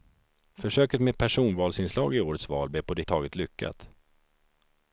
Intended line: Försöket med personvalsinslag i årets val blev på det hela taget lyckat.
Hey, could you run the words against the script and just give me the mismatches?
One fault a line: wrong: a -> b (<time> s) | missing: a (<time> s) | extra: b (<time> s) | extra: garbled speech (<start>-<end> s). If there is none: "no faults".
missing: hela (3.0 s)